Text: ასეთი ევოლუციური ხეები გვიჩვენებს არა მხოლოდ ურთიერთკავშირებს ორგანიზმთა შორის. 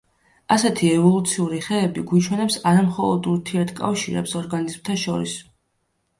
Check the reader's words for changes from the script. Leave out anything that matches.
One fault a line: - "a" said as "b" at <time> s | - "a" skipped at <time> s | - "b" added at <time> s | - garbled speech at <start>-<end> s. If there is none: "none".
none